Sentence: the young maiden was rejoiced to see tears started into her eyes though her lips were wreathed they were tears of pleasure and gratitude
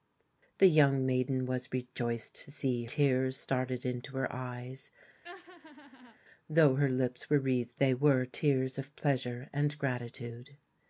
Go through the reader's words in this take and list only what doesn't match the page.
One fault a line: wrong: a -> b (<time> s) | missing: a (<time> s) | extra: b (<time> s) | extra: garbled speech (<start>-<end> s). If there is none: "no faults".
no faults